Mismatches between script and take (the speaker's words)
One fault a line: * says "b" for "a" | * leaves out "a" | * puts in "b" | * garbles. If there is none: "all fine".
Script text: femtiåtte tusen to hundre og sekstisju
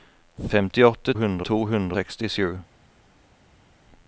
* says "hundre" for "tusen"
* leaves out "og"